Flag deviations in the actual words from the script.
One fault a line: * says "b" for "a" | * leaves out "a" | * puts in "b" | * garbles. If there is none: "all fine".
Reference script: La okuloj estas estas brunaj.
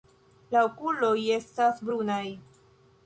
* leaves out "estas"